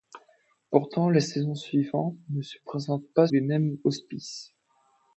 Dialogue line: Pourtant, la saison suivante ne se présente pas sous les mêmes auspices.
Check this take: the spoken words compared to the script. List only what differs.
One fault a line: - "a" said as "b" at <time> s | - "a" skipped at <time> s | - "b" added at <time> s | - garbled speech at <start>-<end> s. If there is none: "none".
- "sous" skipped at 3.3 s